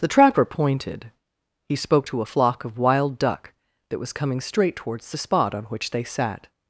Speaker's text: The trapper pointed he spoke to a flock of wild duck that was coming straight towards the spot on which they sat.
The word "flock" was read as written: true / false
true